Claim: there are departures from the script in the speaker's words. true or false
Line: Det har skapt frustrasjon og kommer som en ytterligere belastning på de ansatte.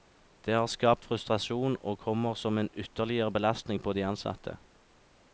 false